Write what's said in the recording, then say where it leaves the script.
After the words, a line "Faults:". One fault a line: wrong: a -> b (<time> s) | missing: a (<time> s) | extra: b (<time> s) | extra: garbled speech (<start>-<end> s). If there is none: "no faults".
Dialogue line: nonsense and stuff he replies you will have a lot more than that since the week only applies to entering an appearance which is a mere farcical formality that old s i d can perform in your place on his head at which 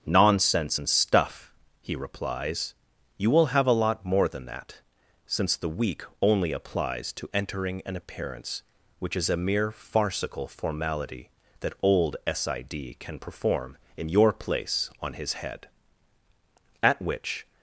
nonsense and stuff he replies you will have a lot more than that since the week only applies to entering an appearance which is a mere farcical formality that old s i d can perform in your place on his head at which
Faults:
no faults